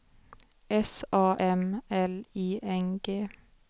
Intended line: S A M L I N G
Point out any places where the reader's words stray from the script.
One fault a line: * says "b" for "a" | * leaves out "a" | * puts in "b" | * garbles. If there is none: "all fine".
all fine